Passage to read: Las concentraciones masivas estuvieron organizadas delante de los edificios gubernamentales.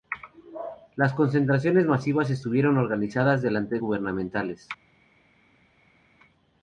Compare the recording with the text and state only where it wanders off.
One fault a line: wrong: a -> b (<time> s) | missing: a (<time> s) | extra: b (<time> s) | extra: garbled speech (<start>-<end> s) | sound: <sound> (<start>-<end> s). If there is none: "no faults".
missing: de los edificios (3.8 s)